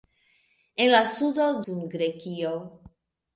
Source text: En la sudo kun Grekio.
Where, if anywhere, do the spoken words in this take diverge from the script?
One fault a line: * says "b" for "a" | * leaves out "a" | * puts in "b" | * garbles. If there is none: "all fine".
all fine